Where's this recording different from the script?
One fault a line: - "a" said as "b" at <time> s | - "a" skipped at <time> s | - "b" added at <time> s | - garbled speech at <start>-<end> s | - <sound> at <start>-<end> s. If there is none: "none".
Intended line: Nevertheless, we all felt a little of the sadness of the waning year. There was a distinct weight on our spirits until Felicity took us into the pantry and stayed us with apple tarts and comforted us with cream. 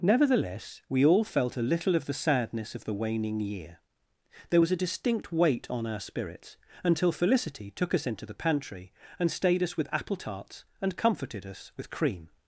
none